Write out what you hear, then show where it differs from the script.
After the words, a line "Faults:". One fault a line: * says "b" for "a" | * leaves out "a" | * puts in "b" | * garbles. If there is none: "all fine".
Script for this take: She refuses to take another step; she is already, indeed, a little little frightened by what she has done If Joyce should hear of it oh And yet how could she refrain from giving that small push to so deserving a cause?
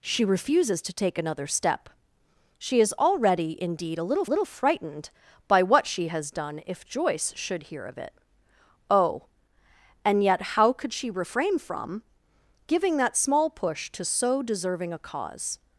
She refuses to take another step; she is already, indeed, a little little frightened by what she has done If Joyce should hear of it oh And yet how could she refrain from giving that small push to so deserving a cause?
Faults:
all fine